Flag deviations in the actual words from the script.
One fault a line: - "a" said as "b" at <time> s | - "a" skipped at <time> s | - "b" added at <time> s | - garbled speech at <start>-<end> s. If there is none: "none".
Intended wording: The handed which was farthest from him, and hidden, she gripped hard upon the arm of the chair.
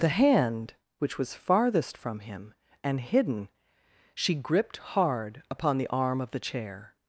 - "handed" said as "hand" at 0.1 s